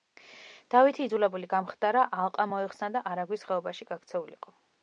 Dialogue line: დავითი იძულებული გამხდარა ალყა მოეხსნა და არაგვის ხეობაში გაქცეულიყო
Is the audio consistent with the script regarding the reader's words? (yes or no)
yes